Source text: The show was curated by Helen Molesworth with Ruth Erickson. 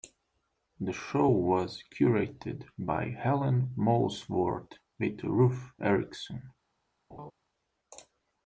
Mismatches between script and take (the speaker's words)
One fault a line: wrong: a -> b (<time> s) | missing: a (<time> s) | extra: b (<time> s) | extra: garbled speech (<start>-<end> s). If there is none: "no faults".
no faults